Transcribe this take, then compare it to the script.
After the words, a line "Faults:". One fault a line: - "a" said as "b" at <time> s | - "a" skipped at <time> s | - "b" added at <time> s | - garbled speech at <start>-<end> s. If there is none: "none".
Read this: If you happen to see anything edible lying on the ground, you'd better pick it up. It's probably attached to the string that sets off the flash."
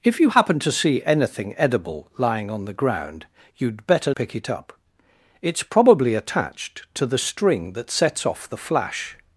If you happen to see anything edible lying on the ground, you'd better pick it up. It's probably attached to the string that sets off the flash."
Faults:
none